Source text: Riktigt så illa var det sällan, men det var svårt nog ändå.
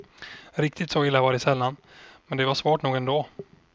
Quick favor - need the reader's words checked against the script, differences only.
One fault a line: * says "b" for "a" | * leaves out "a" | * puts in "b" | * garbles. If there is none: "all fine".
all fine